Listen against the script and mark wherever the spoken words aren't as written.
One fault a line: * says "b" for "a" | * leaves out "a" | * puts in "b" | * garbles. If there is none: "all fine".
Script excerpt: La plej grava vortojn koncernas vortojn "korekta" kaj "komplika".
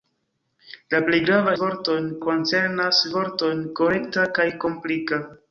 all fine